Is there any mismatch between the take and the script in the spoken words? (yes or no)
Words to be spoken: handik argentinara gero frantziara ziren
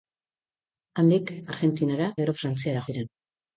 no